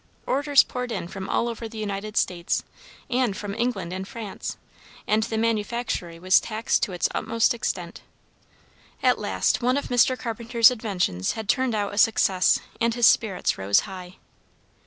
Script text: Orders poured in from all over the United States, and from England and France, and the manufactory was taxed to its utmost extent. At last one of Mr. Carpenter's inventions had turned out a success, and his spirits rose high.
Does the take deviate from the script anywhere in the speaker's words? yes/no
no